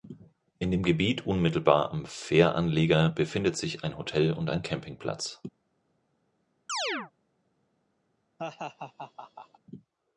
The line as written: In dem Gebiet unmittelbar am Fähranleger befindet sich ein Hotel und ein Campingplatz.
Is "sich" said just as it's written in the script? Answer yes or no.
yes